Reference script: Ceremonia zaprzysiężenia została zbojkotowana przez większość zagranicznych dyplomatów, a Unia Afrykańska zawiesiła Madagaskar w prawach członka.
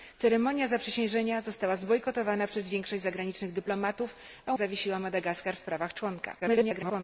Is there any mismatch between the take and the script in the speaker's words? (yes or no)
yes